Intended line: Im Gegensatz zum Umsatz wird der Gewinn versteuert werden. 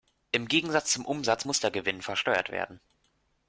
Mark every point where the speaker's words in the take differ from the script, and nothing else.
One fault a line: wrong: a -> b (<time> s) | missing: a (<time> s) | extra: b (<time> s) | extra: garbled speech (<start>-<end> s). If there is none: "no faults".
wrong: wird -> muss (1.4 s)